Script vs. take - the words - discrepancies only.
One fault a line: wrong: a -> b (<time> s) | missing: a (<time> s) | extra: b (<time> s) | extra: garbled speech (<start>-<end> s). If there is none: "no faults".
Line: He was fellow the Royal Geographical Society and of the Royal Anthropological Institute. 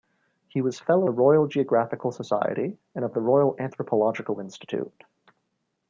no faults